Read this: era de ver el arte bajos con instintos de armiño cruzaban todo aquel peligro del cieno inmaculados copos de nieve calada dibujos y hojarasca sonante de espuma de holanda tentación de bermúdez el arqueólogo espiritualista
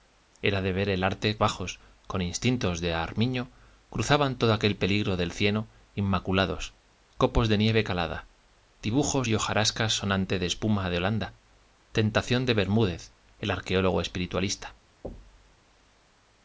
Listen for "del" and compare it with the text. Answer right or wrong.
right